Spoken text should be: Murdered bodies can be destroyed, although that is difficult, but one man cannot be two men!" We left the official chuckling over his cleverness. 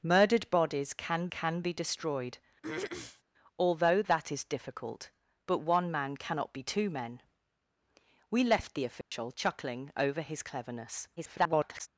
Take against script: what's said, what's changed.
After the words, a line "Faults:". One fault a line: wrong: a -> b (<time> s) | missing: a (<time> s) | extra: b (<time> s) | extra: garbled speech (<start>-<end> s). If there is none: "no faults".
Murdered bodies can can be destroyed, although that is difficult, but one man cannot be two men!" We left the official chuckling over his cleverness. [garbled]
Faults:
extra: can (1.3 s)
extra: garbled speech (11.2-11.9 s)